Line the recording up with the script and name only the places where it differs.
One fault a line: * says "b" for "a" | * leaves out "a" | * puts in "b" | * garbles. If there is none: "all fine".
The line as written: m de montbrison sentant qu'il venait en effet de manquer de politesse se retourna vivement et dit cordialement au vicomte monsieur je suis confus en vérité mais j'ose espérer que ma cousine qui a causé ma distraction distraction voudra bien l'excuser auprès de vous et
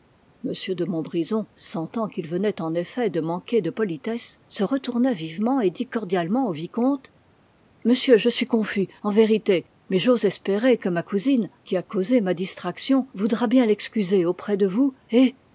* leaves out "distraction"